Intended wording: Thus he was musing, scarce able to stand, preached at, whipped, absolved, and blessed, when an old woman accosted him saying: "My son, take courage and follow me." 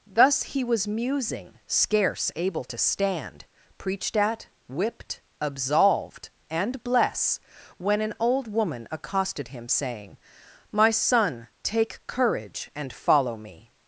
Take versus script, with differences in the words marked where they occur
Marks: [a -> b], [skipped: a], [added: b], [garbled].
Thus he was musing, scarce able to stand, preached at, whipped, absolved, and [blessed, -> bless] when an old woman accosted him saying: "My son, take courage and follow me."